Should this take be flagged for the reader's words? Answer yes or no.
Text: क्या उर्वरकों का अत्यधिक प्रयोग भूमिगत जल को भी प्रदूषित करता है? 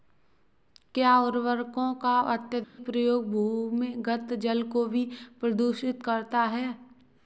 no